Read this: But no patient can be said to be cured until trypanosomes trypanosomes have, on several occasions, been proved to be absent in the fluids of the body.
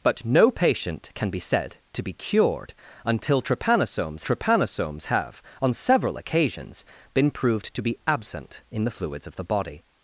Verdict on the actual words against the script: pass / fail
pass